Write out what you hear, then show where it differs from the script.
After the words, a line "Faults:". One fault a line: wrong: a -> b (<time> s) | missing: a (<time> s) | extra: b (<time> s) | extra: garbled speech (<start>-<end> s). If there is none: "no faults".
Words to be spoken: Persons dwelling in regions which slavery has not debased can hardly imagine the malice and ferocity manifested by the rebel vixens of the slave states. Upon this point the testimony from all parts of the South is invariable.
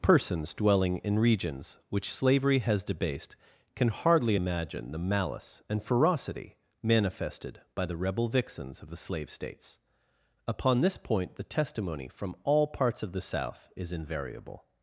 Persons dwelling in regions which slavery has debased can hardly imagine the malice and ferocity manifested by the rebel vixens of the slave states. Upon this point the testimony from all parts of the South is invariable.
Faults:
missing: not (2.8 s)